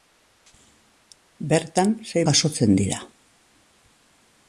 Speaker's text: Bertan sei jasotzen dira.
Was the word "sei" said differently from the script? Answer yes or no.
no